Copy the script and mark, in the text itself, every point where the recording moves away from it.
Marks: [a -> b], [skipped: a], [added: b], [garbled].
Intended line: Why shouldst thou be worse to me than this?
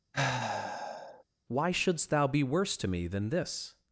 Why shouldst thou be worse to me than this?